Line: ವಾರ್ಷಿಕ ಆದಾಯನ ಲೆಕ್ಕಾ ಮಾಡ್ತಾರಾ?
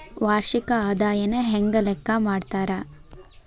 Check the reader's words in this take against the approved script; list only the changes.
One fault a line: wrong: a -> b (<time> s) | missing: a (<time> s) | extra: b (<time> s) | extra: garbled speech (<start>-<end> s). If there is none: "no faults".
extra: ಹೆಂಗ (1.4 s)